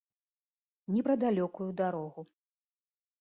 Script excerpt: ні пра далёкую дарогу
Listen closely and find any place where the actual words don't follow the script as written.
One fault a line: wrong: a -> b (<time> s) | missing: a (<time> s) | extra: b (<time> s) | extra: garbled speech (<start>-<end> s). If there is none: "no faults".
no faults